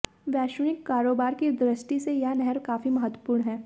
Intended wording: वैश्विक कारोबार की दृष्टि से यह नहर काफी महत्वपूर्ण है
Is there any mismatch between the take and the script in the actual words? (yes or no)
no